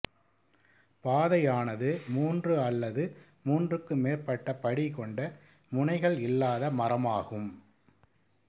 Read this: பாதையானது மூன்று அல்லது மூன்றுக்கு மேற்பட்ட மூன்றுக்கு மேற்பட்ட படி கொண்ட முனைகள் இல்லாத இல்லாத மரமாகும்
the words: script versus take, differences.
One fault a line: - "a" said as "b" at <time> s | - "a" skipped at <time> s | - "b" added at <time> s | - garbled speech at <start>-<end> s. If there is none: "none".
- "மூன்றுக்கு மேற்பட்ட" skipped at 4.5 s
- "இல்லாத" skipped at 6.7 s